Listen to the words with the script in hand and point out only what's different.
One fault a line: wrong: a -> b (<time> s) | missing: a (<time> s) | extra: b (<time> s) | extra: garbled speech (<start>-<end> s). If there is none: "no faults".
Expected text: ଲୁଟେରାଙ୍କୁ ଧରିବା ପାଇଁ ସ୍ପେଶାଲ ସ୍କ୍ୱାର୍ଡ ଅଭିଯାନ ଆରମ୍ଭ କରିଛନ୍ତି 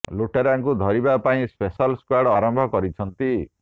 missing: ଅଭିଯାନ (2.3 s)